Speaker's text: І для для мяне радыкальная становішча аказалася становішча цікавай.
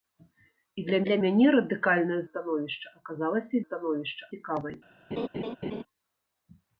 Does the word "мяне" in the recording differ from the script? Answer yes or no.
no